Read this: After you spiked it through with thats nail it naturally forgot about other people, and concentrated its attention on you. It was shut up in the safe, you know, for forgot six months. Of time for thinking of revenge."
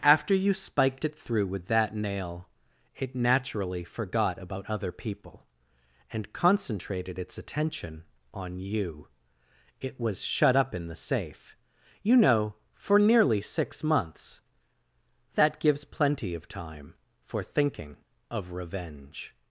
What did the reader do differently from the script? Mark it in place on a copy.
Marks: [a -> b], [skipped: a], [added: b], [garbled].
After you spiked it through with [thats -> that] nail it naturally forgot about other people, and concentrated its attention on you. It was shut up in the safe, you know, for [forgot -> nearly] six months. [added: That gives plenty] Of time for thinking of revenge."